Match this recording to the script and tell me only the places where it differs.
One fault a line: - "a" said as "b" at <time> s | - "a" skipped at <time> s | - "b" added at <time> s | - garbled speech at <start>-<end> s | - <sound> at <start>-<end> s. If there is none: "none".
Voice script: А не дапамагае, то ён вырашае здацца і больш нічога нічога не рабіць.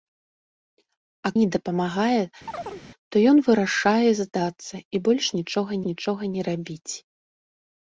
- chirp at 2.5-2.8 s